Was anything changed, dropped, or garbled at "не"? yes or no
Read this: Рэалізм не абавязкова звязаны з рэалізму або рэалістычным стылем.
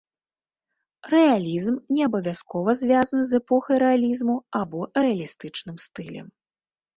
no